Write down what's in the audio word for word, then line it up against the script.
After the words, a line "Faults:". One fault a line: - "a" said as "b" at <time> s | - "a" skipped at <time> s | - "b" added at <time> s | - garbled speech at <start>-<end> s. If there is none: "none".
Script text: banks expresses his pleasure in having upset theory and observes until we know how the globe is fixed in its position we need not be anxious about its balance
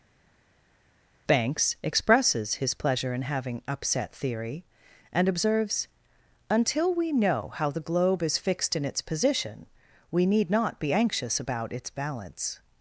banks expresses his pleasure in having upset theory and observes until we know how the globe is fixed in its position we need not be anxious about its balance
Faults:
none